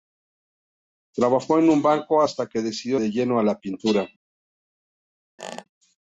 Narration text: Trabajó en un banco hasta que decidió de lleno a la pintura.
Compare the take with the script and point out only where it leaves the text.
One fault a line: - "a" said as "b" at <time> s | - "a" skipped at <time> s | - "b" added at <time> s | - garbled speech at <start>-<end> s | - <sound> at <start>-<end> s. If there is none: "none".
- squeak at 5.4-5.6 s